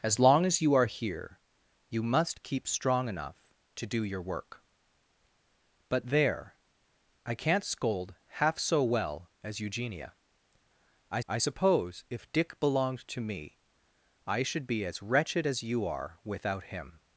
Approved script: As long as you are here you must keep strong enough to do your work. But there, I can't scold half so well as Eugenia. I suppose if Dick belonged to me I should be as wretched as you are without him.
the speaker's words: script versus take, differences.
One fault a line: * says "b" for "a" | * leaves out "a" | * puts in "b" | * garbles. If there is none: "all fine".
* puts in "I"